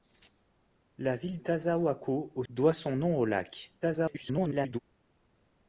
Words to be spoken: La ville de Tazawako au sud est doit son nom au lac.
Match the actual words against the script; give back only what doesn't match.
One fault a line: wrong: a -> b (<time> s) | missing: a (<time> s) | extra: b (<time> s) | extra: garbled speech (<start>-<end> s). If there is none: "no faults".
missing: de (1.4 s)
missing: sud est (2.4 s)
extra: garbled speech (3.8-4.8 s)